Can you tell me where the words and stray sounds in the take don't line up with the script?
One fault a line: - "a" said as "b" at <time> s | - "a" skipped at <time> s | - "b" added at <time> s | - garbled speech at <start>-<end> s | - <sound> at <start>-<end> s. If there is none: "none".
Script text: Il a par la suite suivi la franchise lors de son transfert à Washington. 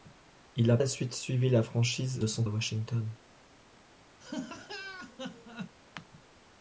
- "par" skipped at 0.8 s
- "lors" skipped at 2.2 s
- "transfert" skipped at 2.4 s
- laugh at 4.2-5.7 s